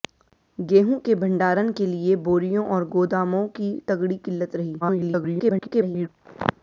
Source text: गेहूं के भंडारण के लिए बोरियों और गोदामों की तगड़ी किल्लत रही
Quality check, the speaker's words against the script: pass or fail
fail